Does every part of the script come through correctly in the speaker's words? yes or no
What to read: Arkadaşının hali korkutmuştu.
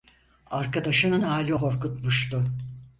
yes